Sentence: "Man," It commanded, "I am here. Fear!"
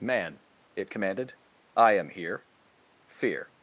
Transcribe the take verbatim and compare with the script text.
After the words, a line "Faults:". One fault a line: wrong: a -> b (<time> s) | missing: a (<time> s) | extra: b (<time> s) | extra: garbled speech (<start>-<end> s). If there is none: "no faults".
"Man," It commanded, "I am here. Fear!"
Faults:
no faults